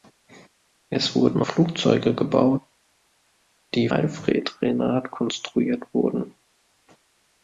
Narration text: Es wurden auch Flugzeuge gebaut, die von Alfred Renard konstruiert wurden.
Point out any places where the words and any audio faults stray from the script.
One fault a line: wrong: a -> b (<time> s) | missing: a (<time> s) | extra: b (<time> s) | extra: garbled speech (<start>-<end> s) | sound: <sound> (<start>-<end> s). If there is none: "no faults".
missing: auch (1.4 s)
missing: von (3.9 s)